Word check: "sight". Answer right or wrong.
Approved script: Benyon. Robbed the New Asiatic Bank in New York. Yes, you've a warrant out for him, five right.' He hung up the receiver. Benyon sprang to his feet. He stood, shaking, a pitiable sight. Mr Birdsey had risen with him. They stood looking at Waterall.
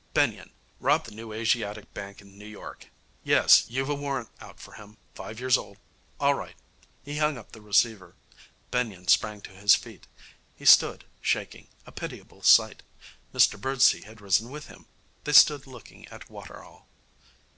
right